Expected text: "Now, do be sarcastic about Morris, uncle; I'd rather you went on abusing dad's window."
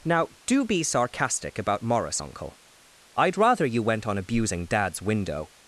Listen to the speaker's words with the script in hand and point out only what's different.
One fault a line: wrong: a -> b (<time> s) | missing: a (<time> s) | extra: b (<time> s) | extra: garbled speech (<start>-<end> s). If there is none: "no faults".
no faults